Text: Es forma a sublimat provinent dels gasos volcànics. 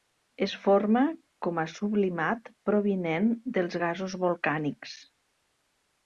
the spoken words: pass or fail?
fail